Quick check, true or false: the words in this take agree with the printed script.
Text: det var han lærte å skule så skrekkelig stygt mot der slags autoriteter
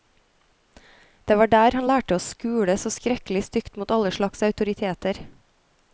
false